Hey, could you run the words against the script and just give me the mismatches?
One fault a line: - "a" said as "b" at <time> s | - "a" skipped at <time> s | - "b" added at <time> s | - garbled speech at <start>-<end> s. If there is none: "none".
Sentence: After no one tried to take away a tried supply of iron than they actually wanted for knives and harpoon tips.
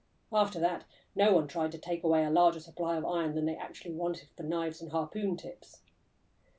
- "that" added at 0.6 s
- "tried" said as "larger" at 2.3 s